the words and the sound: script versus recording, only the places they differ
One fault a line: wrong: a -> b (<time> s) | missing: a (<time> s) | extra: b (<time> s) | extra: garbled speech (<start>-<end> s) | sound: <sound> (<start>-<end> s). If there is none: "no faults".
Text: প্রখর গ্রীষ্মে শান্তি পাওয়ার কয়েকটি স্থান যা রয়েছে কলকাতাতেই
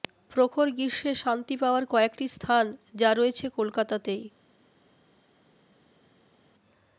no faults